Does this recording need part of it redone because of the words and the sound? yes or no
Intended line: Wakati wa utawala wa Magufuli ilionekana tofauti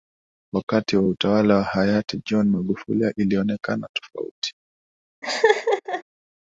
yes